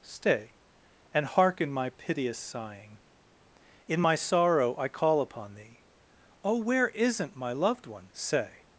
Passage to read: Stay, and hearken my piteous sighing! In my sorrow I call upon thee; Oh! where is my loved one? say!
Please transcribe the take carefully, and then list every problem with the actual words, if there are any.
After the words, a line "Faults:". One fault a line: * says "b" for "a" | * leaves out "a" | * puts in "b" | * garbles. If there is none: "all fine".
Stay, and hearken my piteous sighing! In my sorrow I call upon thee; Oh! where isn't my loved one? say!
Faults:
* says "isn't" for "is"